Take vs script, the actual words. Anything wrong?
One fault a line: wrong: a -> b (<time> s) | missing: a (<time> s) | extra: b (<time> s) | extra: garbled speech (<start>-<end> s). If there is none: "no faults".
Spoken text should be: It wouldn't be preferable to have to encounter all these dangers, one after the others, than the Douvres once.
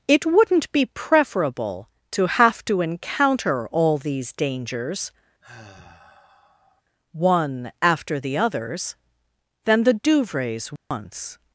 no faults